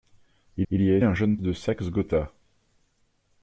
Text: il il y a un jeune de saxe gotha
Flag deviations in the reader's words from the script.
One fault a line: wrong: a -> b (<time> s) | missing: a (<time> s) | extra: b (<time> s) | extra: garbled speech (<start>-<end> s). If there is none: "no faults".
no faults